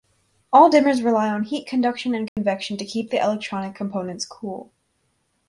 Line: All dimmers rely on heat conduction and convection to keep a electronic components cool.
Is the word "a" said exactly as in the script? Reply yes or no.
no